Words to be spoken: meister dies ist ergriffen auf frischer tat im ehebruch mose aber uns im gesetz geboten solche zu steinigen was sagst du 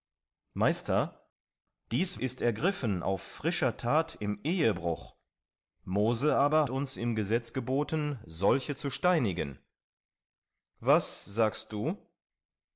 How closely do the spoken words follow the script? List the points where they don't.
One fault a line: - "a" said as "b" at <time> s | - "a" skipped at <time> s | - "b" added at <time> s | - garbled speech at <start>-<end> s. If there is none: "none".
none